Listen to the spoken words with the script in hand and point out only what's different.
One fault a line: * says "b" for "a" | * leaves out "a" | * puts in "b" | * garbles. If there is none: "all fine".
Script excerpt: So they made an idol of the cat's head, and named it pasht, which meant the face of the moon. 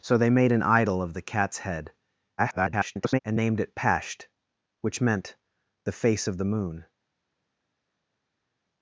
* garbles